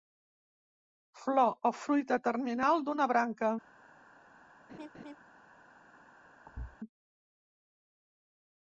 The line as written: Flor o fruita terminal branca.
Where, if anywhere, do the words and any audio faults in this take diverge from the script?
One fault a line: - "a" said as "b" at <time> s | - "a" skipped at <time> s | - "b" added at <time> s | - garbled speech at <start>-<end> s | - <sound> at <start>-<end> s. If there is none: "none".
- "d'una" added at 2.9 s
- laugh at 4.7-5.2 s
- thud at 6.5-6.8 s